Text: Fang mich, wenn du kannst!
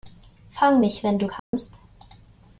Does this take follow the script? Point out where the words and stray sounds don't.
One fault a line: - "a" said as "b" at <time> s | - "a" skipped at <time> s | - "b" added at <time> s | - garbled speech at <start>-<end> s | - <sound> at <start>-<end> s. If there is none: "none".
- dropout at 1.4-1.5 s